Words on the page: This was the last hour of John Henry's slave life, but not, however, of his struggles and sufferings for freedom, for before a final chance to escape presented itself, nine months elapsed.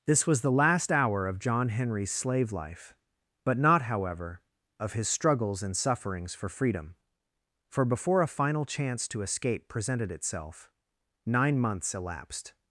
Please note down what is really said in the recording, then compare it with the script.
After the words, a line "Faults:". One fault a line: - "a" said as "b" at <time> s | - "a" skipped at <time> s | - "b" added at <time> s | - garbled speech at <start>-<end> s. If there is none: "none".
This was the last hour of John Henry's slave life, but not, however, of his struggles and sufferings for freedom, for before a final chance to escape presented itself, nine months elapsed.
Faults:
none